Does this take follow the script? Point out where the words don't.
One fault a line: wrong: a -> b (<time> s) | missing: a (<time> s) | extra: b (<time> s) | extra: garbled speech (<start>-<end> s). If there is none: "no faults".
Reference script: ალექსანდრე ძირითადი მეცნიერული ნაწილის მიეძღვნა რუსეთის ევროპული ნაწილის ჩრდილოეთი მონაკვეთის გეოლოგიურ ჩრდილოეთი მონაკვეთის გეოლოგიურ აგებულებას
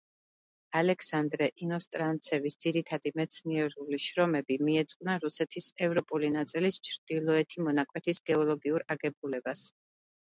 extra: ინოსტრანცევის (1.6 s)
wrong: ნაწილის -> შრომები (4.0 s)
missing: ჩრდილოეთი მონაკვეთის გეოლოგიურ (8.9 s)